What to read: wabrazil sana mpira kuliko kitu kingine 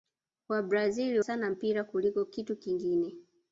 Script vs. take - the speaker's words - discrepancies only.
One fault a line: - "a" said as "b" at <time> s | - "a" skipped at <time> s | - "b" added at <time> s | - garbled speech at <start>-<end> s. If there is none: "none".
none